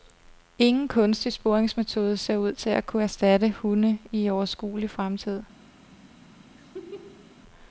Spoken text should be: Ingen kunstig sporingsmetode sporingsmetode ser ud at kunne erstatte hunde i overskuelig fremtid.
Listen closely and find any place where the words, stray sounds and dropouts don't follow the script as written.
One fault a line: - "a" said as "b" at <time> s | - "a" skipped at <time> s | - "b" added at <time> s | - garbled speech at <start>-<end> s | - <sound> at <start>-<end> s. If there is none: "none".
- "sporingsmetode" skipped at 2.2 s
- "til" added at 2.5 s
- laugh at 6.6-7.4 s